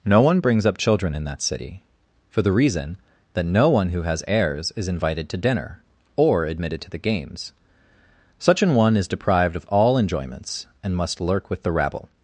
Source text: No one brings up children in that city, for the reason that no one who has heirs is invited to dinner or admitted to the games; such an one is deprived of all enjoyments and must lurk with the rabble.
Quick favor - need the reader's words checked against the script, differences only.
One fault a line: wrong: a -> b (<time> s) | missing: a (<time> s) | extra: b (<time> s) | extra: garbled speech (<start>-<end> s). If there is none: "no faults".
no faults